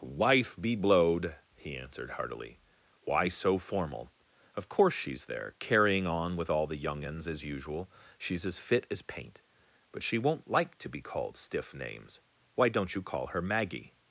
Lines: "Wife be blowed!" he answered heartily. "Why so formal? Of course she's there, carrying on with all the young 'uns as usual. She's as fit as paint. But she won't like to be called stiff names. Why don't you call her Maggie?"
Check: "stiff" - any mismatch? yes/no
no